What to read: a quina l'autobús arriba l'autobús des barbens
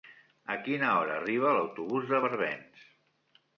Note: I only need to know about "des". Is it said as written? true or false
false